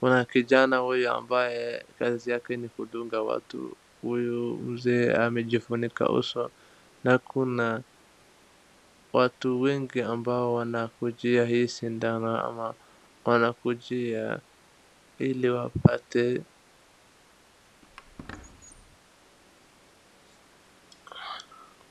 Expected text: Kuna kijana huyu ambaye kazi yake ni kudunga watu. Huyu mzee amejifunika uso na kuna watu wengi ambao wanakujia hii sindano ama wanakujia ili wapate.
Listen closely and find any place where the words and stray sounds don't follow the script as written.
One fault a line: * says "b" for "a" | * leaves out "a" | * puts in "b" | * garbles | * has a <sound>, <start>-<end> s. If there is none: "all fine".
* has a squeak, 17.8-19.0 s